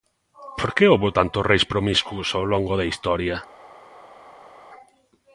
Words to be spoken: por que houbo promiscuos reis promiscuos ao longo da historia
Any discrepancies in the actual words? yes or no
yes